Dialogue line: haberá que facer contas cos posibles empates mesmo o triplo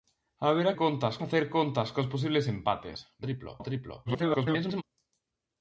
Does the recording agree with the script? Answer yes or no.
no